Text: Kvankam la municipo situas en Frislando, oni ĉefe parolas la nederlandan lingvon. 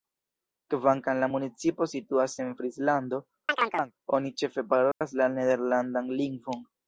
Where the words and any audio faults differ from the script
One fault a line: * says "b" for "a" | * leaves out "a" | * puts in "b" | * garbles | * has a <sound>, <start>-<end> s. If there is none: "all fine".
* has a chirp, 3.5-3.9 s
* has a dropout, 4.9-5.0 s